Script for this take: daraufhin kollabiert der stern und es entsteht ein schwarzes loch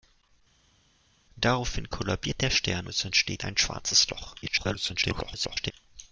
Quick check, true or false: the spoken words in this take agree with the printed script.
false